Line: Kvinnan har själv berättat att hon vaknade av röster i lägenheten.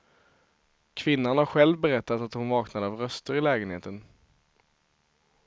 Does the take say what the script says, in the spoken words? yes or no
yes